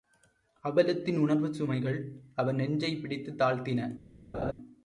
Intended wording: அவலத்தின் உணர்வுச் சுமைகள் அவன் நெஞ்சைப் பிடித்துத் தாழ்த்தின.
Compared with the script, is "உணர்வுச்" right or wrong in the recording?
right